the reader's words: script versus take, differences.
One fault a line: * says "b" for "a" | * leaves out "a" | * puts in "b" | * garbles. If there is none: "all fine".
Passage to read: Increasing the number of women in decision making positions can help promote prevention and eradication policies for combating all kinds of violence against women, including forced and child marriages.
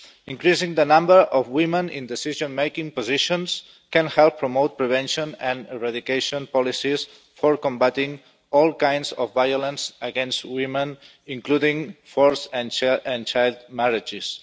all fine